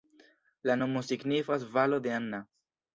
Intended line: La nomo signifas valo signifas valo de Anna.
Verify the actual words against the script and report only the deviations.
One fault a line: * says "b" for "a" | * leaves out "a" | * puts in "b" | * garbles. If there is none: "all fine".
* leaves out "signifas valo"